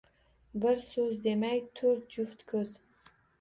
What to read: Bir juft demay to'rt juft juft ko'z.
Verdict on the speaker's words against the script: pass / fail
fail